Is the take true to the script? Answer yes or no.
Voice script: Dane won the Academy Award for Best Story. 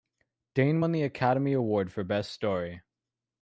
yes